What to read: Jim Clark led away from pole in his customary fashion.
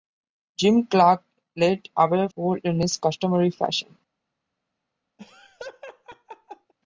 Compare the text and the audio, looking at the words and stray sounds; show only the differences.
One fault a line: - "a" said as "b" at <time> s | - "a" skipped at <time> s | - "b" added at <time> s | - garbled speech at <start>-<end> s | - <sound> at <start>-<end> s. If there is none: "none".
- "from" skipped at 2.3 s
- laugh at 5.2-6.7 s